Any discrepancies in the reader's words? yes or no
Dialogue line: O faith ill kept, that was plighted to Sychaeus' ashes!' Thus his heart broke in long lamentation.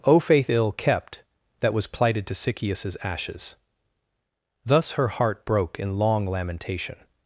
yes